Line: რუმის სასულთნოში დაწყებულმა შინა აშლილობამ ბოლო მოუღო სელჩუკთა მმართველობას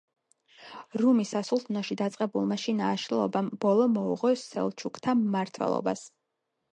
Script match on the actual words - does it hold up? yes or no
yes